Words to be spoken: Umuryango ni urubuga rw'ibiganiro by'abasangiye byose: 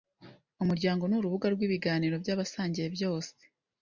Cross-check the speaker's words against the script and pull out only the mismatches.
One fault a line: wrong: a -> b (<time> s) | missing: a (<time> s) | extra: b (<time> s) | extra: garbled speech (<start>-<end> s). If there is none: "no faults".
no faults